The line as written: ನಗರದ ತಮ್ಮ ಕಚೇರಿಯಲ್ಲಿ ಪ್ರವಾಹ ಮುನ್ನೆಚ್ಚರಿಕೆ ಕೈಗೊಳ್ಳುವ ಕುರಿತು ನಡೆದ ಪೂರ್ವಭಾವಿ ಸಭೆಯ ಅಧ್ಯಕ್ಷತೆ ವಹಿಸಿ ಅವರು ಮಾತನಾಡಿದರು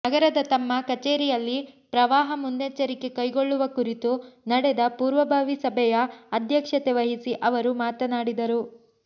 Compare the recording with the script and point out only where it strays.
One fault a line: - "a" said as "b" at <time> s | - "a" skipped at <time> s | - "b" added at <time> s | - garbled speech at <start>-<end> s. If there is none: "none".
none